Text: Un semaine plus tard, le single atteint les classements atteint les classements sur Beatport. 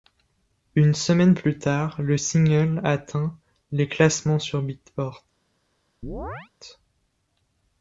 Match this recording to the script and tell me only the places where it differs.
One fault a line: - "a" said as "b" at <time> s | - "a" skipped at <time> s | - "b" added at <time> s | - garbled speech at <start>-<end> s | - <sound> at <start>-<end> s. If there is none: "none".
- "Un" said as "Une" at 0.8 s
- "atteint les classements" skipped at 4.4 s
- chirp at 6.0-6.5 s